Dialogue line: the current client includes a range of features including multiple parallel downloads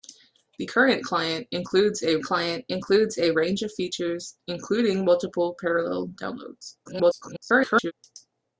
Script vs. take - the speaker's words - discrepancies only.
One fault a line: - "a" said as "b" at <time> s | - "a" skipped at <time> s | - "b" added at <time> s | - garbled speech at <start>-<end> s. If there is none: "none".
- "client includes a" added at 2.2 s
- garbled speech at 6.9-7.9 s